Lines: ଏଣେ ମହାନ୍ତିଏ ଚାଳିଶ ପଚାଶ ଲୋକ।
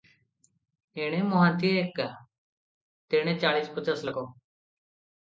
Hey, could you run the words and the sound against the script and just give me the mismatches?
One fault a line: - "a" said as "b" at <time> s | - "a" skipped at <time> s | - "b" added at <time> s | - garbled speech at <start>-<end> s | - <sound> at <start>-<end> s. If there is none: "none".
- "ଏକା ତେଣେ" added at 1.8 s